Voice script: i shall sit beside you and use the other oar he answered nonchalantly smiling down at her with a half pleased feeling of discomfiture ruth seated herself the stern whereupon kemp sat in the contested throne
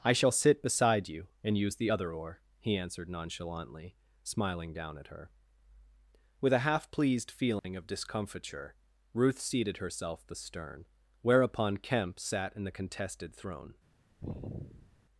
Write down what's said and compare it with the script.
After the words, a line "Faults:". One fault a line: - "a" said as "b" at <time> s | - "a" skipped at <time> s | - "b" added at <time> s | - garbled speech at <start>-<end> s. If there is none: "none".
i shall sit beside you and use the other oar he answered nonchalantly smiling down at her with a half pleased feeling of discomfiture ruth seated herself the stern whereupon kemp sat in the contested throne
Faults:
none